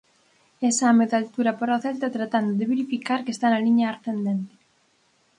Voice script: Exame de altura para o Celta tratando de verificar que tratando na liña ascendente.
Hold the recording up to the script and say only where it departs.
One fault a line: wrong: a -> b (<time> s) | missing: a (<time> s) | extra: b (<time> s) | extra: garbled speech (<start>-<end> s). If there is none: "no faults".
wrong: tratando -> está (3.3 s)